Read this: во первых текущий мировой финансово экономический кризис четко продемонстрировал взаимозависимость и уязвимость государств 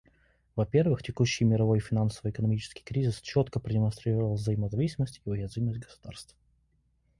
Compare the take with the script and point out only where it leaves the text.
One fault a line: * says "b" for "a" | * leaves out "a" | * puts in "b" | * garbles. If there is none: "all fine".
all fine